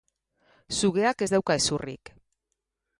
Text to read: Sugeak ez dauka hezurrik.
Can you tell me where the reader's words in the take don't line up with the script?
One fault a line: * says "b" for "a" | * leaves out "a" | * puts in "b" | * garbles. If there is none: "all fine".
all fine